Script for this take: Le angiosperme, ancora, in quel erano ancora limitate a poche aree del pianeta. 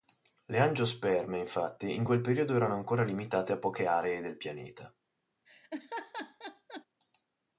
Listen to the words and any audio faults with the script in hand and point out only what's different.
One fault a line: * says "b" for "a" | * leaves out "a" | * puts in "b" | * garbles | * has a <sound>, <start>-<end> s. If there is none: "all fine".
* says "infatti" for "ancora"
* puts in "periodo"
* has a laugh, 5.5-6.9 s